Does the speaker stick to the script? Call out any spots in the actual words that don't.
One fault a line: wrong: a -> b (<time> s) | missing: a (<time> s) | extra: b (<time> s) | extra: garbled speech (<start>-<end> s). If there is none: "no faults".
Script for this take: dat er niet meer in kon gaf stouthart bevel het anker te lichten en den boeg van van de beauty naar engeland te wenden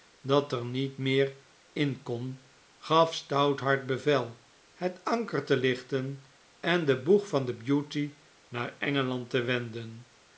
missing: van (7.5 s)